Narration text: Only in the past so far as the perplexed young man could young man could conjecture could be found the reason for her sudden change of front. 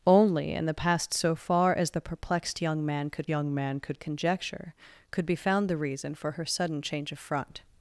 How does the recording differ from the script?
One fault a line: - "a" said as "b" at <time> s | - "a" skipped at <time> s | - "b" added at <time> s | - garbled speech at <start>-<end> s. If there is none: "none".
none